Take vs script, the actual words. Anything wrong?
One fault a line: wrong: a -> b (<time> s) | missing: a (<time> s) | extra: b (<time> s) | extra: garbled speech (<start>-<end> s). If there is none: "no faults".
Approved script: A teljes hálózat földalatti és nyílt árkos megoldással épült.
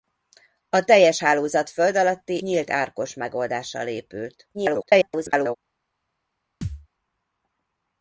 missing: és (2.4 s)
extra: garbled speech (4.5-5.6 s)